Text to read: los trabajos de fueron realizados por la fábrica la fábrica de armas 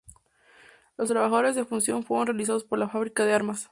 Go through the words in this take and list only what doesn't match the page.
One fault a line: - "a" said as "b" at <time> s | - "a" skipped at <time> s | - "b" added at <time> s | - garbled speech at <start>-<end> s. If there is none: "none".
- "fundición" added at 1.7 s
- "la fábrica" skipped at 3.3 s